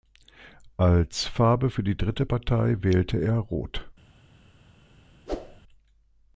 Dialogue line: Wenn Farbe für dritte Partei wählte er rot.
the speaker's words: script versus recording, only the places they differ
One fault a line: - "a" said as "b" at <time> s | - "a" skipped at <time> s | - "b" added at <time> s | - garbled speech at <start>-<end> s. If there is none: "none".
- "Wenn" said as "Als" at 0.8 s
- "die" added at 1.8 s